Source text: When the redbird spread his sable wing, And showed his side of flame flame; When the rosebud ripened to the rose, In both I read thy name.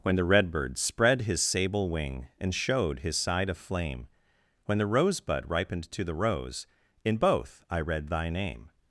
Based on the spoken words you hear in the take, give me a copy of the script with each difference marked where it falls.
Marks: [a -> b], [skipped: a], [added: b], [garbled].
When the redbird spread his sable wing, And showed his side of flame [skipped: flame;] When the rosebud ripened to the rose, In both I read thy name.